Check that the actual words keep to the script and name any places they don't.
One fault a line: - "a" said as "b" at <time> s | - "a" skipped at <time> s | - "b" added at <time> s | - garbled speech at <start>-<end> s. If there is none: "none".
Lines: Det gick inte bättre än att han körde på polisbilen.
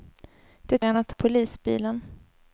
- "gick inte bättre" skipped at 0.8 s
- "han körde på" skipped at 1.1 s